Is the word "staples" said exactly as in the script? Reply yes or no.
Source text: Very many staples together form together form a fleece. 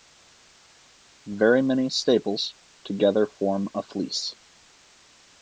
yes